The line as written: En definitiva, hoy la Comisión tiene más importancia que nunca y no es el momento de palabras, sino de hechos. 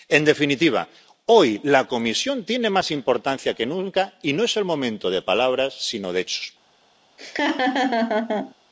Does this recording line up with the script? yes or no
yes